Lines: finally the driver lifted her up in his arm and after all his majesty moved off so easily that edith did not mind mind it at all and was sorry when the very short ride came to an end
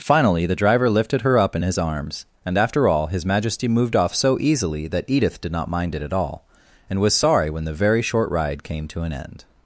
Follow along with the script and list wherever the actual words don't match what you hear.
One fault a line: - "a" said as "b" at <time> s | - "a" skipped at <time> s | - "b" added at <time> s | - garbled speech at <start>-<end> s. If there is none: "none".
- "arm" said as "arms" at 1.8 s
- "mind" skipped at 5.9 s